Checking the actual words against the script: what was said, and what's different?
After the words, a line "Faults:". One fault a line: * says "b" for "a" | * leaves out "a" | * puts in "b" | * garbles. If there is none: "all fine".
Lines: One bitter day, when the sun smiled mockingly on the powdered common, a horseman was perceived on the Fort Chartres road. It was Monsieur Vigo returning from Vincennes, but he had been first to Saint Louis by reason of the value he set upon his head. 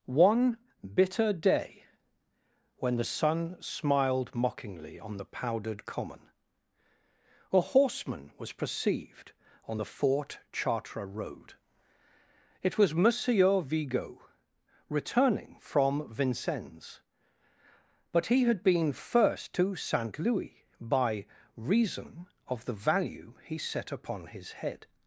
One bitter day, when the sun smiled mockingly on the powdered common, a horseman was perceived on the Fort Chartres road. It was Monsieur Vigo returning from Vincennes, but he had been first to Saint Louis by reason of the value he set upon his head.
Faults:
all fine